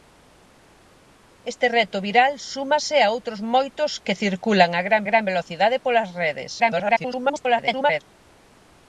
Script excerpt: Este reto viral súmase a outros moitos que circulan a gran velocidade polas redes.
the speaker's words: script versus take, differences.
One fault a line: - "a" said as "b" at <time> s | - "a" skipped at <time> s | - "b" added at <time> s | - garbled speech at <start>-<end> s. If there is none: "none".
- "gran" added at 5.1 s
- garbled speech at 6.6-8.0 s